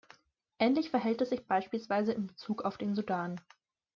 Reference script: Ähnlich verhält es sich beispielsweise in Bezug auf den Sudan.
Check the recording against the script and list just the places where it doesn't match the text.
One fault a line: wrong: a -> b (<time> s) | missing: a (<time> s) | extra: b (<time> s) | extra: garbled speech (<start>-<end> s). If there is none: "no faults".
no faults